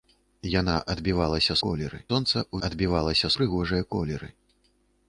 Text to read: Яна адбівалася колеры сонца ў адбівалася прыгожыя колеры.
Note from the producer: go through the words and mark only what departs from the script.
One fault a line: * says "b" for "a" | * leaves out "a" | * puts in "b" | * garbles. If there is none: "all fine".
all fine